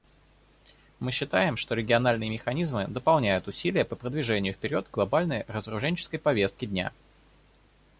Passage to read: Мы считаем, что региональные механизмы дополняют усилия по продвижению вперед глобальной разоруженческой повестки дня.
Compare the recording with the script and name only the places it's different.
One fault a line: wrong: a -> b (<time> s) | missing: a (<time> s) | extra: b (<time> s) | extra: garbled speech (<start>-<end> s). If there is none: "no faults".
no faults